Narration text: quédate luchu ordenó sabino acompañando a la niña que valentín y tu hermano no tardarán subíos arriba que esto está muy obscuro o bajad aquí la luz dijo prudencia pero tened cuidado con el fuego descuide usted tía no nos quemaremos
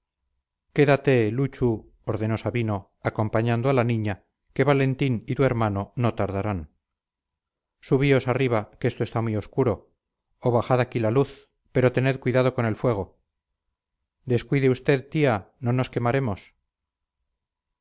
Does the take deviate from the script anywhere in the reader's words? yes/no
yes